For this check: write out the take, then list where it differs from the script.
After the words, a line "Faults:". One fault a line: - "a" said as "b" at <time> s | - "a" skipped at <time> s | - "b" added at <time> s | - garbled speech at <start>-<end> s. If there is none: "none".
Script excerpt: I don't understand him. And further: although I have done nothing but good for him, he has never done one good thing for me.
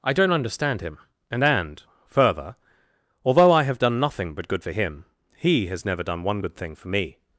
I don't understand him. And And further: although I have done nothing but good for him, he has never done one good thing for me.
Faults:
- "And" added at 1.4 s